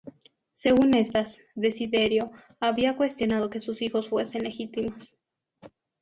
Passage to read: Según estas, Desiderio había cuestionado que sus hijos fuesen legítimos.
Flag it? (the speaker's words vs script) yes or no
no